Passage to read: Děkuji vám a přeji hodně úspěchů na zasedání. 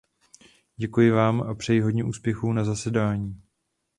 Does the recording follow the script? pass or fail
pass